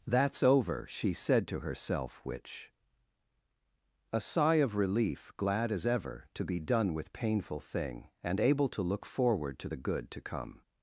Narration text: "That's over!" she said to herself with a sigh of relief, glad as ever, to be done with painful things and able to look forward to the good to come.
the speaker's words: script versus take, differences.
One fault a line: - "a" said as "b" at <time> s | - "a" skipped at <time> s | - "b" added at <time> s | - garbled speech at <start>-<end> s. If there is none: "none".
- "with" said as "which" at 2.2 s
- "things" said as "thing" at 7.6 s